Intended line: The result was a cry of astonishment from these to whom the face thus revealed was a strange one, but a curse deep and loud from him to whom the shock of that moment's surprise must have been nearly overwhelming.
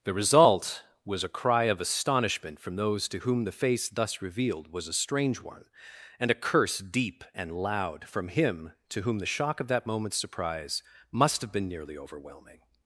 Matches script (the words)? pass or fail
fail